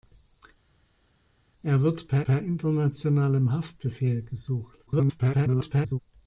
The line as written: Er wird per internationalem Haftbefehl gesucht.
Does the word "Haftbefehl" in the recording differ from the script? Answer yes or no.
no